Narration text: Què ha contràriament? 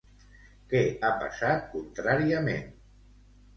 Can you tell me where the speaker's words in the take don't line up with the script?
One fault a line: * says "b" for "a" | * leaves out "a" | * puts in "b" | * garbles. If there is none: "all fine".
* puts in "passat"